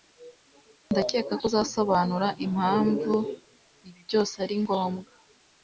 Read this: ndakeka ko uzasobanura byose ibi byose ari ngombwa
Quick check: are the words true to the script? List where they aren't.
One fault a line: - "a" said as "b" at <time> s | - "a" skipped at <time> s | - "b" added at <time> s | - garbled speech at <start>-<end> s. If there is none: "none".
- "byose" said as "impamvu" at 2.4 s